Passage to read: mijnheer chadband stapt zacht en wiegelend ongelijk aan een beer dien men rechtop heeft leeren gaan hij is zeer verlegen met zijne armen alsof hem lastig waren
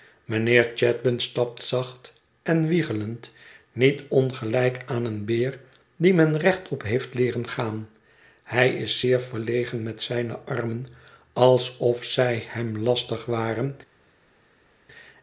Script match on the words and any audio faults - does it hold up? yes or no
no